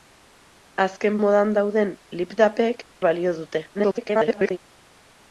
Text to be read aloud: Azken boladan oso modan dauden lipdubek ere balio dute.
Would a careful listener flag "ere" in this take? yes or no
yes